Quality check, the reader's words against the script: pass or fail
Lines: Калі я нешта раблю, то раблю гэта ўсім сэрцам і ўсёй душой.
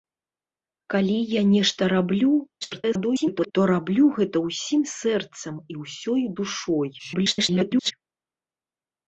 fail